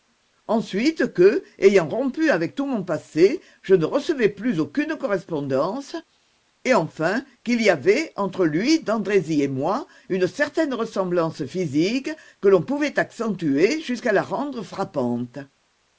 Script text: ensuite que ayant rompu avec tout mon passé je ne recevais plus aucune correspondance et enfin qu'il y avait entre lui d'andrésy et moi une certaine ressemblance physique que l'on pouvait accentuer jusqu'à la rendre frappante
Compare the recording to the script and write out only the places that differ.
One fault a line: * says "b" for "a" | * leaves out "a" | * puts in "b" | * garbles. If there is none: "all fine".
all fine